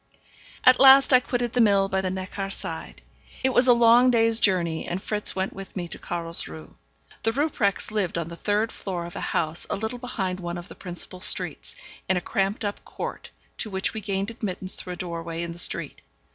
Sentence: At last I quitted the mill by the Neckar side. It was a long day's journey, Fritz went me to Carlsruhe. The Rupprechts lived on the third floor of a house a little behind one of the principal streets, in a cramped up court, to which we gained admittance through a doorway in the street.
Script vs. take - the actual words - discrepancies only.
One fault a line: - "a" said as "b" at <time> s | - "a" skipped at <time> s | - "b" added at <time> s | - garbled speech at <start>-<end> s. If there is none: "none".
- "and" added at 4.9 s
- "with" added at 5.5 s